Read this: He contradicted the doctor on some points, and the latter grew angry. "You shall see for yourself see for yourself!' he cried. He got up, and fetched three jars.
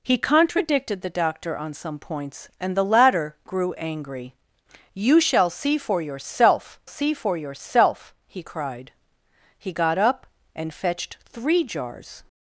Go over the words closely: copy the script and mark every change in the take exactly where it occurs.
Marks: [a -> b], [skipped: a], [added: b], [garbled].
He contradicted the doctor on some points, and the latter grew angry. "You shall see for yourself see for yourself!' he cried. He got up, and fetched three jars.